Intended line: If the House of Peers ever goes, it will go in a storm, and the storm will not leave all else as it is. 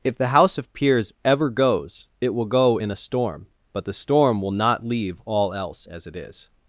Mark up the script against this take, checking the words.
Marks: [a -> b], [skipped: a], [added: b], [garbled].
If the House of Peers ever goes, it will go in a storm, [and -> but] the storm will not leave all else as it is.